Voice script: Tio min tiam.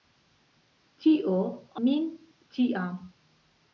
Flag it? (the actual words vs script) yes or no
no